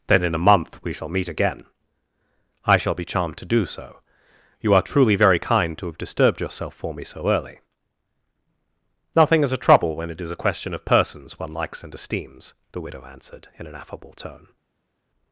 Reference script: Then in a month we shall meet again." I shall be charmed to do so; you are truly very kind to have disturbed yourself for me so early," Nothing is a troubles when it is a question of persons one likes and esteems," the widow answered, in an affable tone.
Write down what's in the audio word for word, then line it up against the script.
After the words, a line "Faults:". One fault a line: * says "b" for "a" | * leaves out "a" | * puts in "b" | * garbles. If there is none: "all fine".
Then in a month we shall meet again." I shall be charmed to do so; you are truly very kind to have disturbed yourself for me so early," Nothing is a trouble when it is a question of persons one likes and esteems," the widow answered, in an affable tone.
Faults:
* says "trouble" for "troubles"